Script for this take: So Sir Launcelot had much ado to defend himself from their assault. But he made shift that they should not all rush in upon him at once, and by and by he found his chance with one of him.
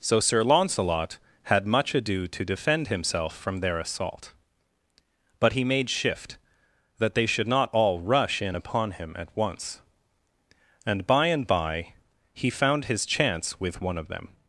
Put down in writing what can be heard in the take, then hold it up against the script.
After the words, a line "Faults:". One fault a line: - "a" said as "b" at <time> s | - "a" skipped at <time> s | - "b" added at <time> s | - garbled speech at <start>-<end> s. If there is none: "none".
So Sir Launcelot had much ado to defend himself from their assault. But he made shift that they should not all rush in upon him at once, and by and by he found his chance with one of them.
Faults:
- "him" said as "them" at 14.1 s